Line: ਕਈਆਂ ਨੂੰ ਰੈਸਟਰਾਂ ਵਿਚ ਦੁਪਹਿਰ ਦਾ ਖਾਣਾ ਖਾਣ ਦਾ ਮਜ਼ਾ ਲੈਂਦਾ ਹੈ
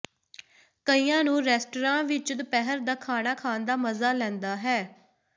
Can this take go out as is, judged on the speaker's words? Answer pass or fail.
pass